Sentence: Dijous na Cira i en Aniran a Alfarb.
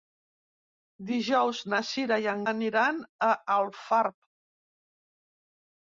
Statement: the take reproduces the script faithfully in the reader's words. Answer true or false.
true